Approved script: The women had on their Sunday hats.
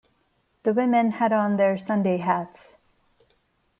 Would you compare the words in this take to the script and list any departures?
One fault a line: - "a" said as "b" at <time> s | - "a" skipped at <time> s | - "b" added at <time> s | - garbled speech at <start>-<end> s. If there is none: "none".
none